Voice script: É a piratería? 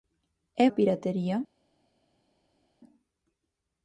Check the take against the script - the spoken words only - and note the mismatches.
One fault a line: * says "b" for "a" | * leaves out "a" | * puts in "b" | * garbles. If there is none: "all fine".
all fine